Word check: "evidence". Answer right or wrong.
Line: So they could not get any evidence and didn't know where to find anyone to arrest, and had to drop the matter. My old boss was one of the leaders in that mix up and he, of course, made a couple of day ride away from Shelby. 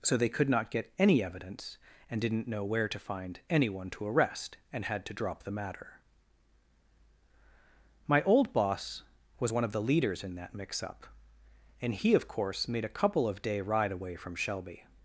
right